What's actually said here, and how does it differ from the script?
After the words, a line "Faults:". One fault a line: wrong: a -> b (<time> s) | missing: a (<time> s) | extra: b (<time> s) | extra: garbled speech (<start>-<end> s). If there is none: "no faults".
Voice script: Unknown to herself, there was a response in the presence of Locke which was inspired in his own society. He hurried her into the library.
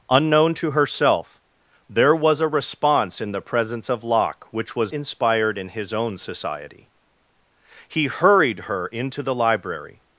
Unknown to herself, there was a response in the presence of Locke which was inspired in his own society. He hurried her into the library.
Faults:
no faults